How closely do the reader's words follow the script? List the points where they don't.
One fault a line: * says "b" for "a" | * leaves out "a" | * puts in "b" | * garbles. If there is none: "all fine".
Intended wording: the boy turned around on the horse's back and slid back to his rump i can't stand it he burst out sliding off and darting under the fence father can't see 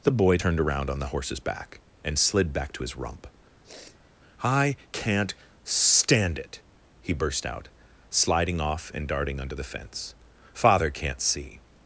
all fine